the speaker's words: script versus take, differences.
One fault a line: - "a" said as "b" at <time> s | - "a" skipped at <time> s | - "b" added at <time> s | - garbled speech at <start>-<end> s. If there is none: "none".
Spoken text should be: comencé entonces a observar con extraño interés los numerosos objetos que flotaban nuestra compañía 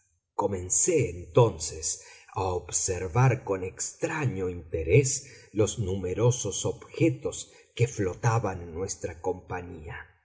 - "en" added at 8.6 s